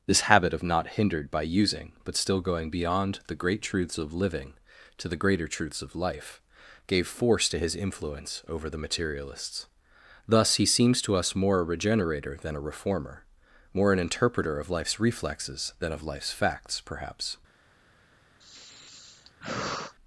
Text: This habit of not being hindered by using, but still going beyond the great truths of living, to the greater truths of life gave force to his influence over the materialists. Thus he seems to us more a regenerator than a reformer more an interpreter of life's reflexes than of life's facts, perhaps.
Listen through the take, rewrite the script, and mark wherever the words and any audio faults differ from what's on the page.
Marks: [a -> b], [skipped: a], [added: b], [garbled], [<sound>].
This habit of not [skipped: being] hindered by using, but still going beyond the great truths of living, to the greater truths of life gave force to his influence over the materialists. Thus he seems to us more a regenerator than a reformer more an interpreter of life's reflexes than of life's facts, perhaps. [sigh]